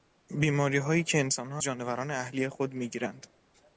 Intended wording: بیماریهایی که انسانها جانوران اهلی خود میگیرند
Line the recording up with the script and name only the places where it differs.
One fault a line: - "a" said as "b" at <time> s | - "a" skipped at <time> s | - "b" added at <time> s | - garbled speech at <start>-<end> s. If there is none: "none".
none